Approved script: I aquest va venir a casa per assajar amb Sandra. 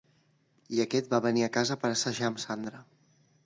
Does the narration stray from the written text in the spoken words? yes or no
no